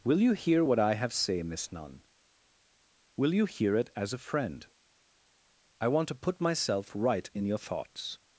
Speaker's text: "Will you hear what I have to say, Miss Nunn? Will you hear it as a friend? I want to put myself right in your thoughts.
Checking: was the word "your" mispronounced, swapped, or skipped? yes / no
no